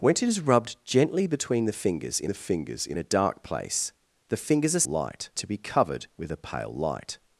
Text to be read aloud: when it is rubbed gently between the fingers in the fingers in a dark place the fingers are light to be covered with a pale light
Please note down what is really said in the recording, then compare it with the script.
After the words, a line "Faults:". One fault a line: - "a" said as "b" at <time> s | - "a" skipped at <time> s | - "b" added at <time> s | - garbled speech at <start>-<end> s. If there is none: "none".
when it is rubbed gently between the fingers in the fingers in a dark place the fingers are light to be covered with a pale light
Faults:
none